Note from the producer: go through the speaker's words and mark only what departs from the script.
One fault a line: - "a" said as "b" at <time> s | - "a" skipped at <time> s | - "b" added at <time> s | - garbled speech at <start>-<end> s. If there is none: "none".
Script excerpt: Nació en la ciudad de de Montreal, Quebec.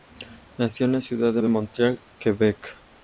none